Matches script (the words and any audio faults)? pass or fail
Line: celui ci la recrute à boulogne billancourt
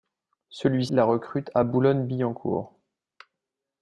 fail